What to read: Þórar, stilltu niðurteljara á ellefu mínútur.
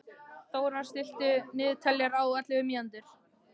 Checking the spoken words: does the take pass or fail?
pass